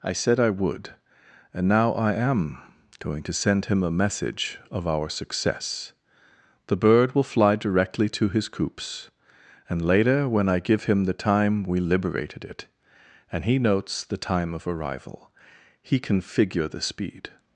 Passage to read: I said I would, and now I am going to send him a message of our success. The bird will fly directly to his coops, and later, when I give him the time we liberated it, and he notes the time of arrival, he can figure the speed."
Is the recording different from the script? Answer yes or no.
no